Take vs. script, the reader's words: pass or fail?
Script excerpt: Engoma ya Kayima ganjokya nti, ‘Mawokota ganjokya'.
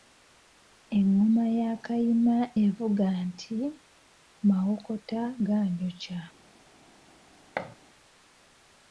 fail